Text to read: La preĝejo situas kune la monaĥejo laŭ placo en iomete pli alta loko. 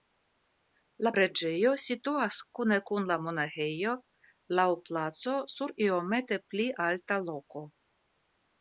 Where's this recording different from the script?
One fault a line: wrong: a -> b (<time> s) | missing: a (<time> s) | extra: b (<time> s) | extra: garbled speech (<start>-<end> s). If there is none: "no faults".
extra: kun (2.9 s)
wrong: en -> sur (5.6 s)